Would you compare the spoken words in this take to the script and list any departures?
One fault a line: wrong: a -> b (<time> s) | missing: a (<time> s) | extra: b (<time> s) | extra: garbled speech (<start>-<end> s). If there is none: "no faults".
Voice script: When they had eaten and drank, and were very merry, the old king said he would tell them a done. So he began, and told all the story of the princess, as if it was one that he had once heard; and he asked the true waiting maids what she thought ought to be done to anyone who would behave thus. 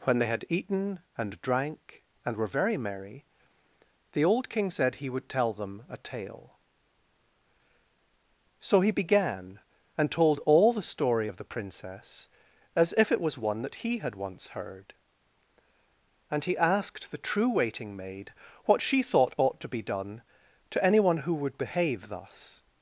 wrong: done -> tale (6.0 s)
wrong: maids -> maid (18.0 s)